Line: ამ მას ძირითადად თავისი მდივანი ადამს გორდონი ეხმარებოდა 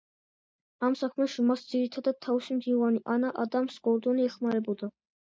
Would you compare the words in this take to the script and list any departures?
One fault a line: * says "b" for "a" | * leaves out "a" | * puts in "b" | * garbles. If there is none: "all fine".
* puts in "საქმეში"
* puts in "ანა"